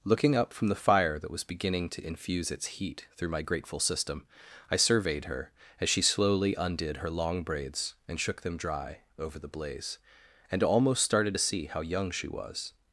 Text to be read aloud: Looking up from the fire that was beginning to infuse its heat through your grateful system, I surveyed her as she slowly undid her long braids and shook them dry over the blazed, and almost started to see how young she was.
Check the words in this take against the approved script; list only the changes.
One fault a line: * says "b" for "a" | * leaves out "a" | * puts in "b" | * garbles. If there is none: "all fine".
* says "my" for "your"
* says "blaze" for "blazed"